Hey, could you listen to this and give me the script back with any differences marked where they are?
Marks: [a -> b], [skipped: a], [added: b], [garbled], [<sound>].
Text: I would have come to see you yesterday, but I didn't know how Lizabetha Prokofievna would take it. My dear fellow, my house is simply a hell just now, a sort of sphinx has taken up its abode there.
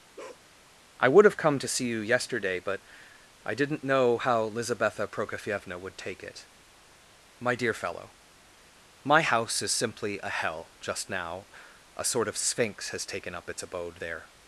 [bark] I would have come to see you yesterday, but I didn't know how Lizabetha Prokofievna would take it. My dear fellow, my house is simply a hell just now, a sort of sphinx has taken up its abode there.